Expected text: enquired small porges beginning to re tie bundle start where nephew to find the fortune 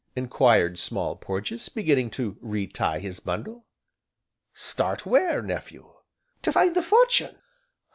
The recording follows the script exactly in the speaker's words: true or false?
false